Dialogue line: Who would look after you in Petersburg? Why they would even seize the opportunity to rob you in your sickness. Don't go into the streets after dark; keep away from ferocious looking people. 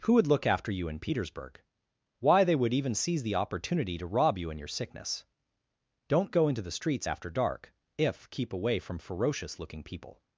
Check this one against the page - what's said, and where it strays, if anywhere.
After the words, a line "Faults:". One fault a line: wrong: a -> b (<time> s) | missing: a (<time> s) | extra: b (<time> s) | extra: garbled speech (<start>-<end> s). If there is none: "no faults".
Who would look after you in Petersburg? Why they would even seize the opportunity to rob you in your sickness. Don't go into the streets after dark; if keep away from ferocious looking people.
Faults:
extra: if (8.0 s)